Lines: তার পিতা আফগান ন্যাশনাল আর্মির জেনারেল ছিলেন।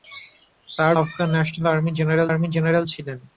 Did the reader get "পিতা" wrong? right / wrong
wrong